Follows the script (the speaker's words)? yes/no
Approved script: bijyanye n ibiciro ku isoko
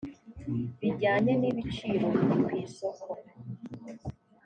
no